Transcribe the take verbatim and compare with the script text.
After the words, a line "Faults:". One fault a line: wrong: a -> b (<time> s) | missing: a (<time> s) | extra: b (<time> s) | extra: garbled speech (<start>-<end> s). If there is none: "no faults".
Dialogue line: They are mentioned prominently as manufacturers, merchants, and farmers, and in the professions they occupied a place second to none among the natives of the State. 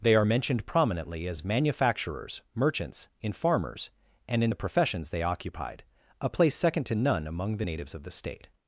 They are mentioned prominently as manufacturers, merchants, in farmers, and in the professions they occupied a place second to none among the natives of the State.
Faults:
wrong: and -> in (3.2 s)